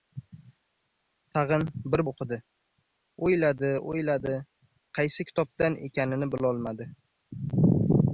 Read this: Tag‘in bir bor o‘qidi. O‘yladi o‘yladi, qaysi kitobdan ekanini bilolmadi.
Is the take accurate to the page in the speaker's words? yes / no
no